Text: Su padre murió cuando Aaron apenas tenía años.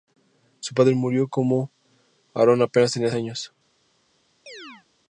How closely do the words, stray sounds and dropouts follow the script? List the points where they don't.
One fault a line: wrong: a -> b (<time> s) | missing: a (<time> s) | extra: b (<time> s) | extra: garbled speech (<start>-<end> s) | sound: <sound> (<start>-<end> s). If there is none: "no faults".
sound: chirp (4.5-4.9 s)